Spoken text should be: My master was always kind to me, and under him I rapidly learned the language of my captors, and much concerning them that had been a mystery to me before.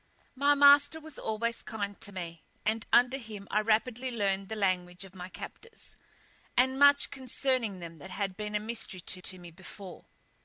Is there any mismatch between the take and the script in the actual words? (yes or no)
yes